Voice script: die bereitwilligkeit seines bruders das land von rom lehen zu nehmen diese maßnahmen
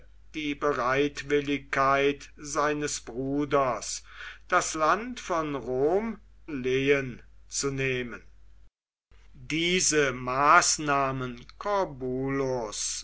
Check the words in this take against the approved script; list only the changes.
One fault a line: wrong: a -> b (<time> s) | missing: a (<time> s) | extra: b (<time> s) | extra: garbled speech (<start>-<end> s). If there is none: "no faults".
no faults